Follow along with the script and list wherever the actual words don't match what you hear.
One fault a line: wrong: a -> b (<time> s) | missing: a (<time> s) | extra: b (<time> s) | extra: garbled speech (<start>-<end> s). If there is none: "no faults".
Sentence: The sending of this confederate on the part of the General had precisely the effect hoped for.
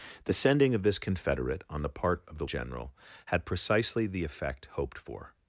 no faults